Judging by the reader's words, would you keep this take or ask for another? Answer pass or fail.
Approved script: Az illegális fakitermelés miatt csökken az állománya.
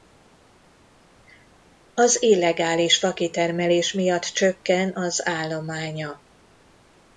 pass